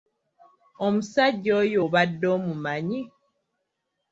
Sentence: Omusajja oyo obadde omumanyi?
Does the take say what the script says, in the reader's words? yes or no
yes